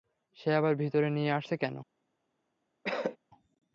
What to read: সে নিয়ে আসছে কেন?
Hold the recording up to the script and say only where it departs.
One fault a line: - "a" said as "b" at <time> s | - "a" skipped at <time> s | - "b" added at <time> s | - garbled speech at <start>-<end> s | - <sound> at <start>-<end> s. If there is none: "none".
- "আবার ভিতরে" added at 0.6 s
- cough at 2.8-3.2 s